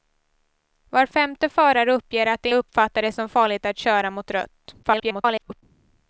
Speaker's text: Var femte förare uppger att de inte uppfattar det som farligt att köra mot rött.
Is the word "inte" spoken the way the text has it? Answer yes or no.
no